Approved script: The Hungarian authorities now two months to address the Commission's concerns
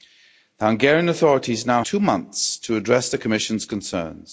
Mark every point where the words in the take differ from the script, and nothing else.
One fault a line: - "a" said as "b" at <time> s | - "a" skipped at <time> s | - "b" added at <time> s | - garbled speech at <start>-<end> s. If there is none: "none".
none